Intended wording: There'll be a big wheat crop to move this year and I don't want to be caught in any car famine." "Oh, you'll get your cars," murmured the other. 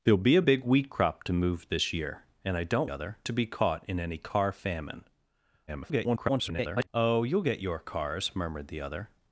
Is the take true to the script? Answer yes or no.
no